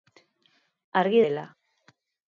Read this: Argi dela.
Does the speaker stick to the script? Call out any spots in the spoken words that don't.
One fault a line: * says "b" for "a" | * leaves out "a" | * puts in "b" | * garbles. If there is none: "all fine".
all fine